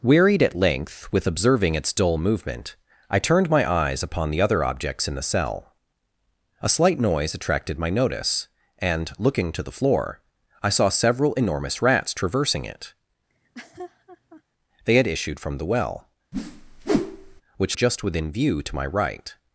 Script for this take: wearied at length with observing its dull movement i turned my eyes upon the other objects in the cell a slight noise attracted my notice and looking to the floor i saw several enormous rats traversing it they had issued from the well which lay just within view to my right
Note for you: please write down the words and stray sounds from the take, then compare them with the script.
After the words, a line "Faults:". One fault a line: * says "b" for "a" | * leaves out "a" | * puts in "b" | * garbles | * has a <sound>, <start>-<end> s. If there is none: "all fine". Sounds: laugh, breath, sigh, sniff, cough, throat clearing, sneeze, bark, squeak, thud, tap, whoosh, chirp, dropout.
wearied at length with observing its dull movement i turned my eyes upon the other objects in the cell a slight noise attracted my notice and looking to the floor i saw several enormous rats traversing it they had issued from the well which just within view to my right
Faults:
* has a laugh, 13.3-14.4 s
* has a whoosh, 16.3-17.4 s
* leaves out "lay"